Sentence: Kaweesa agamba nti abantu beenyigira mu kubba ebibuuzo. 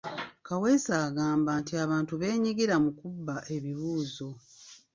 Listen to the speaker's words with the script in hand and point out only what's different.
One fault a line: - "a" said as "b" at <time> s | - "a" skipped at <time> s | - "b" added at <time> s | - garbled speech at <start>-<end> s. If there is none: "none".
none